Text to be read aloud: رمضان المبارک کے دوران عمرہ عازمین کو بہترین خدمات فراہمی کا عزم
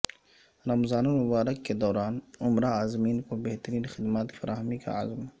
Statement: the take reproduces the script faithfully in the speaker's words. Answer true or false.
true